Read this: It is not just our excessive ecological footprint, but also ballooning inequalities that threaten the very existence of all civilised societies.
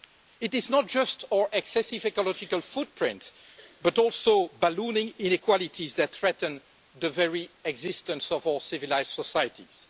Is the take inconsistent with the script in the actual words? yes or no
no